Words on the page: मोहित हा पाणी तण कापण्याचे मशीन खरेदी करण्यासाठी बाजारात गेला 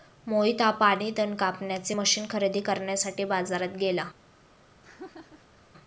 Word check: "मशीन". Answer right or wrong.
right